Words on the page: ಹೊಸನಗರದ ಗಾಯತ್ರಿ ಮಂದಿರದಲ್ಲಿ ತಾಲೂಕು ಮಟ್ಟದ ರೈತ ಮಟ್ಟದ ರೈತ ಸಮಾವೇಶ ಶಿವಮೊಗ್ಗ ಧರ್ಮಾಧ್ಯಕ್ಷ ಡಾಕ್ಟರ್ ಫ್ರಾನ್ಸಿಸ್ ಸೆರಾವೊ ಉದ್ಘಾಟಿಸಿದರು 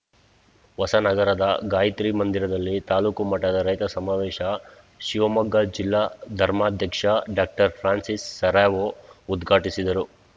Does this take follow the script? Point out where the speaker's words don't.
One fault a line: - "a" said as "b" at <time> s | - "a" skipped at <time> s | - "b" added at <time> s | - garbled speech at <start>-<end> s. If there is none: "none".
- "ಮಟ್ಟದ ರೈತ" skipped at 3.9 s
- "ಜಿಲ್ಲಾ" added at 5.8 s